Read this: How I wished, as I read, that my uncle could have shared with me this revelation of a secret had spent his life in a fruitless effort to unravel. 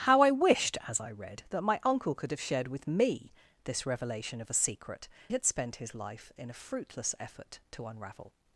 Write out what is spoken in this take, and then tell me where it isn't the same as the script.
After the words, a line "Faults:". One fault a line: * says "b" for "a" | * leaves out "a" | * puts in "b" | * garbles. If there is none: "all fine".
How I wished, as I read, that my uncle could have shared with me this revelation of a secret had spent his life in a fruitless effort to unravel.
Faults:
all fine